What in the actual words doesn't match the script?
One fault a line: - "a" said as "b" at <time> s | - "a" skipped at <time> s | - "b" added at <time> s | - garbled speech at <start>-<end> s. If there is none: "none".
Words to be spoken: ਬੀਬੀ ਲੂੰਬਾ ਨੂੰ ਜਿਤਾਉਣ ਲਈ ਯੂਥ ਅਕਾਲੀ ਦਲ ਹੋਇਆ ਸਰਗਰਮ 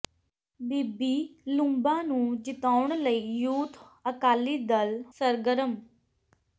- "ਹੋਇਆ" skipped at 5.0 s